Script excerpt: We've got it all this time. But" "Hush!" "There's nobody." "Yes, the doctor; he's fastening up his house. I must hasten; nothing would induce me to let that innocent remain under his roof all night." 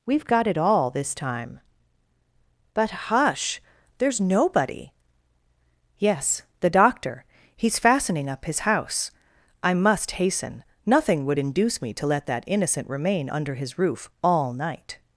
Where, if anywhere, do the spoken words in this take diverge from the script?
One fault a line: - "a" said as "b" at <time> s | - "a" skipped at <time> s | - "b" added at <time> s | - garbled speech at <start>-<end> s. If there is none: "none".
none